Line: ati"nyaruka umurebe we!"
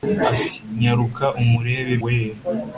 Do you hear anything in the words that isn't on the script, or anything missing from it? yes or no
no